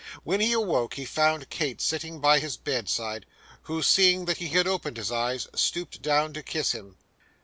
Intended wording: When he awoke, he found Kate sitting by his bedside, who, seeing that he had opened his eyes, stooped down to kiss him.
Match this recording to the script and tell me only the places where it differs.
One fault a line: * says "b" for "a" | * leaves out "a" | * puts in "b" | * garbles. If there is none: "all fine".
all fine